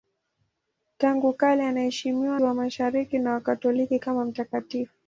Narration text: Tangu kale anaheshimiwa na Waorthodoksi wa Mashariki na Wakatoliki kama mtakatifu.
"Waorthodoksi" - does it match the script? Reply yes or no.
no